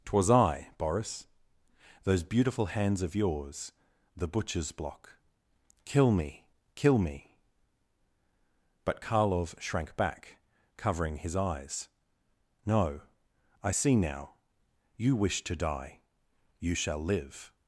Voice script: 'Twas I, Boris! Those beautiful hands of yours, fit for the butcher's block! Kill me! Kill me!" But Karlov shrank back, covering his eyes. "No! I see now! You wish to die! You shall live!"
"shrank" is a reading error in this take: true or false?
false